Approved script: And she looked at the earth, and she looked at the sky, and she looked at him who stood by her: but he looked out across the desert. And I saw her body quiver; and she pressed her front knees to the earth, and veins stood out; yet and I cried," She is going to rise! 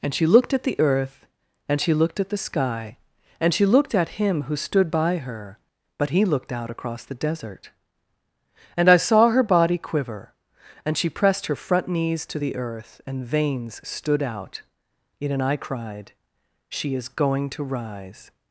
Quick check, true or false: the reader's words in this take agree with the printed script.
true